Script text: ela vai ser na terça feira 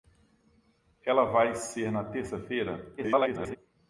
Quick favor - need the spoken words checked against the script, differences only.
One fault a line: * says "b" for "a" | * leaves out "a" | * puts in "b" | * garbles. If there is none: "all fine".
* garbles